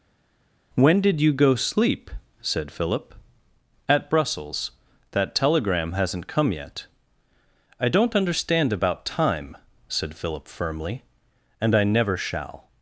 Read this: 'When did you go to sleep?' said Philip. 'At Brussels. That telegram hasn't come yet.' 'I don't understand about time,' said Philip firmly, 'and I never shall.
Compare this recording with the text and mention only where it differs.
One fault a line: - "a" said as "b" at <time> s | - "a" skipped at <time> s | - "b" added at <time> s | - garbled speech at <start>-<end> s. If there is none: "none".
- "to" skipped at 1.5 s